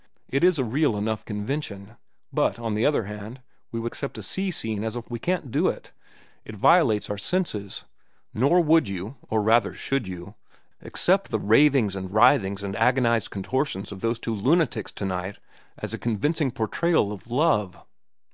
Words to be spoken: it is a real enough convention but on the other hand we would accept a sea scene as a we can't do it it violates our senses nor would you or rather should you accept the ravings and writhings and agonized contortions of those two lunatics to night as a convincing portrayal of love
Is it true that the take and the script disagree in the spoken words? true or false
false